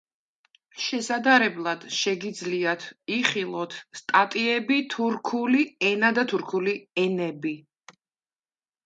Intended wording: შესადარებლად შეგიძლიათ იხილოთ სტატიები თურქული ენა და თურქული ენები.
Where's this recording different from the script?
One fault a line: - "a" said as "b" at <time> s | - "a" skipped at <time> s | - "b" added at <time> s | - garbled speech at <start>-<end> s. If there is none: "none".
none